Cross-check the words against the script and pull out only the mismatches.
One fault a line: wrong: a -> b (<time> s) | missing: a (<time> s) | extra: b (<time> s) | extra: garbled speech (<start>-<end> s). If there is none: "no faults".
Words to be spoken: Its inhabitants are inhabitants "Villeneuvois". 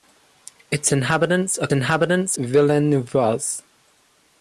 no faults